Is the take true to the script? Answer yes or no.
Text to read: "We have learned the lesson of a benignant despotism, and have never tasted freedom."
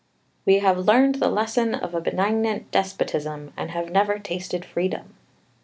yes